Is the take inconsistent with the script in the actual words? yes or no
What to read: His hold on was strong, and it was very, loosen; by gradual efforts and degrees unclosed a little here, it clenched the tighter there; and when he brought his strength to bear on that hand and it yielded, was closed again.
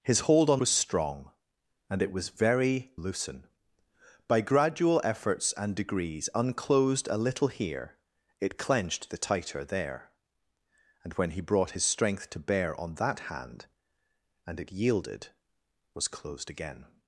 no